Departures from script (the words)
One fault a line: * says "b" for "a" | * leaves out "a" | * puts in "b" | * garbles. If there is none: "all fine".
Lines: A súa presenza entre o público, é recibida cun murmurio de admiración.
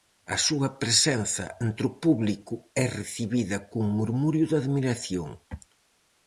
all fine